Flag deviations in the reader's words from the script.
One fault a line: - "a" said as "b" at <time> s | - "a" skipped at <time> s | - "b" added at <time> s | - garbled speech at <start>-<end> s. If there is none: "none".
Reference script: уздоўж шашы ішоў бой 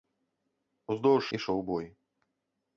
- "шашы" skipped at 1.2 s